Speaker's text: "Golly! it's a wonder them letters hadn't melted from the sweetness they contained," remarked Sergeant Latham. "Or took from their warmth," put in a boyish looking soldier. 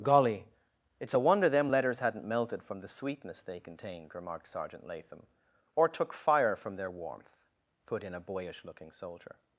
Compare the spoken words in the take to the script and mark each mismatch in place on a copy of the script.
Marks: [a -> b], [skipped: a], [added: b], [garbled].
"Golly! it's a wonder them letters hadn't melted from the sweetness they contained," remarked Sergeant Latham. "Or took [added: fire] from their warmth," put in a boyish looking soldier.